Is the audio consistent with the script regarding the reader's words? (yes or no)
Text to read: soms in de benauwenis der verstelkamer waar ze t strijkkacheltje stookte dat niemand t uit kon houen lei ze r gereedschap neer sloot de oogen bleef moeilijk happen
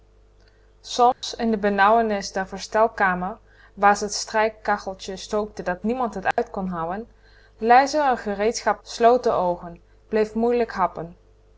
no